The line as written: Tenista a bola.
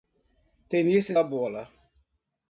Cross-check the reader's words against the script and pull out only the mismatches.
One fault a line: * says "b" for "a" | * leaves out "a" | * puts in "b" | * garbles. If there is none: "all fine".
all fine